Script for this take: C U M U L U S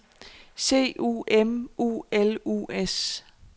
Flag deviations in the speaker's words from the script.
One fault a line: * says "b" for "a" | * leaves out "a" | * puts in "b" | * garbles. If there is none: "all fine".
all fine